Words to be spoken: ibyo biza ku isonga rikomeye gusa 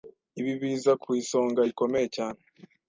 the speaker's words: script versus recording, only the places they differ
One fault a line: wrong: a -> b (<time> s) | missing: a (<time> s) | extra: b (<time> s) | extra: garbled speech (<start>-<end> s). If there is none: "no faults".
wrong: ibyo -> ibi (0.4 s)
wrong: gusa -> cyane (2.1 s)